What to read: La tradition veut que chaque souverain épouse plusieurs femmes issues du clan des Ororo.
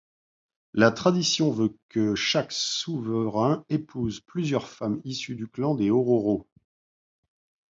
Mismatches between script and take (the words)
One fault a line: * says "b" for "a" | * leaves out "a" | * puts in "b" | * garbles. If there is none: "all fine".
all fine